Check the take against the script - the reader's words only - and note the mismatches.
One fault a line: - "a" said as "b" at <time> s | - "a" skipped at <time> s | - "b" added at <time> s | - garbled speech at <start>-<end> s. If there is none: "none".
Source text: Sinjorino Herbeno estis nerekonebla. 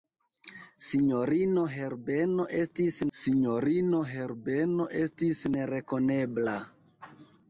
- "sinjorino Herbeno estis" added at 3.2 s